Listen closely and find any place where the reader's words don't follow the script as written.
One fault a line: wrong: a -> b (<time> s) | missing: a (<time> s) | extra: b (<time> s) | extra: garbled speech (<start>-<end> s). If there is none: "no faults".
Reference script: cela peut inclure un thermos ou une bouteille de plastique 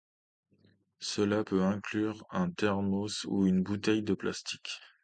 no faults